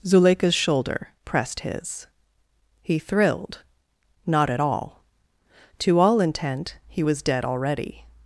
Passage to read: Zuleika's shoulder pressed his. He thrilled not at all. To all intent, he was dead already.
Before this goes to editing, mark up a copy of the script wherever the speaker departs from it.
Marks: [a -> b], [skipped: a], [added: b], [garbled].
Zuleika's shoulder pressed his. He thrilled not at all. To all intent, he was dead already.